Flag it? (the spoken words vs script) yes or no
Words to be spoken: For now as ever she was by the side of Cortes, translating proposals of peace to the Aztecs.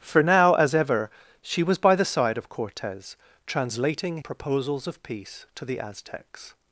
no